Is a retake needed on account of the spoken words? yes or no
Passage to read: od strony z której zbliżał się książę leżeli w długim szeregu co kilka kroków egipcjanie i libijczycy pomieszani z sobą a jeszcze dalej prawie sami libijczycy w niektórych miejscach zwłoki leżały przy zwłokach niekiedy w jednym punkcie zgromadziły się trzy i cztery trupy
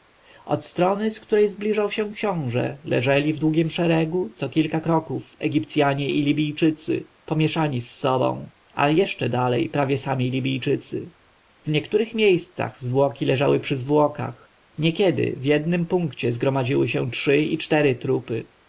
no